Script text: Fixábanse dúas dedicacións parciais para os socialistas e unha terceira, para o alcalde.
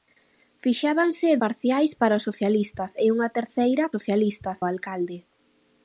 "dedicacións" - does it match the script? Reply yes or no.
no